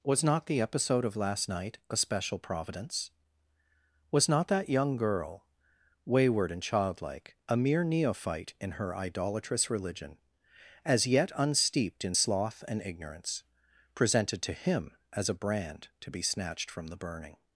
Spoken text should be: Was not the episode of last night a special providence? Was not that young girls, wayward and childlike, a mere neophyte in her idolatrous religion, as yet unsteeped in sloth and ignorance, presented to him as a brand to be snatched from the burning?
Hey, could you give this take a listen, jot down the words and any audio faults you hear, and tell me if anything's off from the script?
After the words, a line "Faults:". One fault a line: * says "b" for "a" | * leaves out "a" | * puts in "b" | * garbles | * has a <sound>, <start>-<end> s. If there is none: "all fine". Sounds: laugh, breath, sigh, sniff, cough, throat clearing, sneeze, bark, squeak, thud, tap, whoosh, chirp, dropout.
Was not the episode of last night a special providence? Was not that young girl, wayward and childlike, a mere neophyte in her idolatrous religion, as yet unsteeped in sloth and ignorance, presented to him as a brand to be snatched from the burning?
Faults:
* says "girl" for "girls"